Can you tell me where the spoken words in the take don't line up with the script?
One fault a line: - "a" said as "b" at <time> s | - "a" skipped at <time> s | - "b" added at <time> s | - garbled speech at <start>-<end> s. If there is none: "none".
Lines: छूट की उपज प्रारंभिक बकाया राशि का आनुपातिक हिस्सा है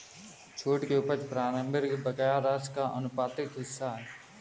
none